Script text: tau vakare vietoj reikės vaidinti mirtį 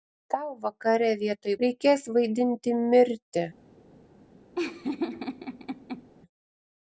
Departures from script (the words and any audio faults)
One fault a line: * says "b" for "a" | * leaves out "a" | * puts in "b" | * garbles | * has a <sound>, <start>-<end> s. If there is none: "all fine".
* has a laugh, 4.6-6.1 s